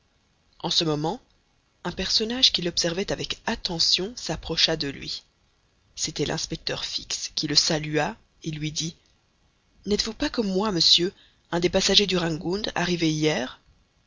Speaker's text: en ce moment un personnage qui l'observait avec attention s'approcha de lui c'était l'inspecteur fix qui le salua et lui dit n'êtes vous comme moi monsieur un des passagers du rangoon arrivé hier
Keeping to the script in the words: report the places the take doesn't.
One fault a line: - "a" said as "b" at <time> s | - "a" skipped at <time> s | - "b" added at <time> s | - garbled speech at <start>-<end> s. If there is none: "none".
- "pas" added at 10.1 s